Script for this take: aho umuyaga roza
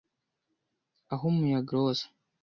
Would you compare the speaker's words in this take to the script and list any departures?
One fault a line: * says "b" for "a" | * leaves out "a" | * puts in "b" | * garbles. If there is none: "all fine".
all fine